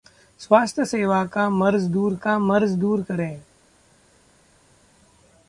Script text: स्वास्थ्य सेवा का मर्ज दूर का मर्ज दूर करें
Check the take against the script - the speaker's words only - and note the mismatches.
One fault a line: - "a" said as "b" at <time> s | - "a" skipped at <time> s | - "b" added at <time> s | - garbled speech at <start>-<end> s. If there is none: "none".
none